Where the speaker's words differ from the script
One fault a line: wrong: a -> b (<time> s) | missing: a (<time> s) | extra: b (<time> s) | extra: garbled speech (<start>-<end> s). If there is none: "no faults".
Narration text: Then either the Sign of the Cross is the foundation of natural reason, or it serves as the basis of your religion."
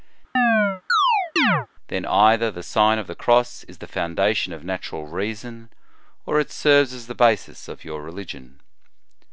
no faults